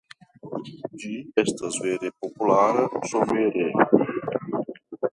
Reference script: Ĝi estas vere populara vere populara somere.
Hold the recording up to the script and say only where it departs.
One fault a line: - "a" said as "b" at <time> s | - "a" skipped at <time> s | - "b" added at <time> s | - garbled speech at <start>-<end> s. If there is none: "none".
- "vere populara" skipped at 2.9 s